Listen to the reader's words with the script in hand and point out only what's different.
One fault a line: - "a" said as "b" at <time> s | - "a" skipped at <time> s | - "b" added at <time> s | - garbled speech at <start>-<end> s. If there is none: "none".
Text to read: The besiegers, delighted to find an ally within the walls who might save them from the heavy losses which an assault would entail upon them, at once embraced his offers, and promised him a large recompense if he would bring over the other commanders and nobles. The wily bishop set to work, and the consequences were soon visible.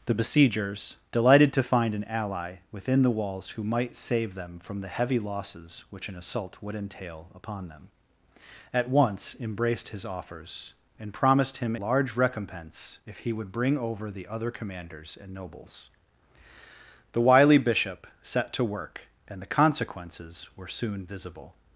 - "a" skipped at 11.8 s